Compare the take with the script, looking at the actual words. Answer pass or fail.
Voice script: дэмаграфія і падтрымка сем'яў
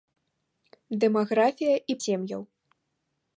fail